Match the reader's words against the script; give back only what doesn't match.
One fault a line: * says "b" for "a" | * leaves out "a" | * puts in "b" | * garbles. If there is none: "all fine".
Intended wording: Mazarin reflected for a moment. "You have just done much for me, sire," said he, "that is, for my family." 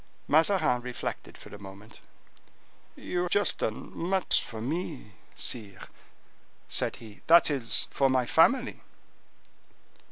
* leaves out "have"